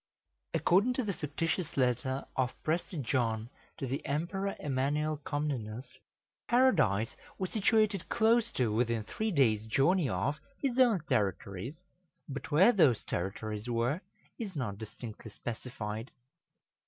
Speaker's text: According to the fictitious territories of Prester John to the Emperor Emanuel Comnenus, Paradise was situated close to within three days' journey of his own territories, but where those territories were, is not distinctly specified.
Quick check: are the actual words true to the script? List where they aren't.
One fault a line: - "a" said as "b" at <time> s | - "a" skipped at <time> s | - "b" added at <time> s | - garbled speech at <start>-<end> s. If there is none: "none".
- "territories" said as "letter" at 1.8 s